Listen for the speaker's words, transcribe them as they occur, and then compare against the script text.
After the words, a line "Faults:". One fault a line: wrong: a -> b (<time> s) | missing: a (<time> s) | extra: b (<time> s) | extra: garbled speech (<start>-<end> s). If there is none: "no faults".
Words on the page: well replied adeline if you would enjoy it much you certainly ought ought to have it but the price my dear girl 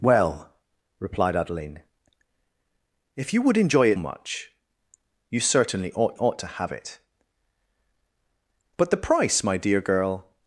well replied adeline if you would enjoy it much you certainly ought ought to have it but the price my dear girl
Faults:
no faults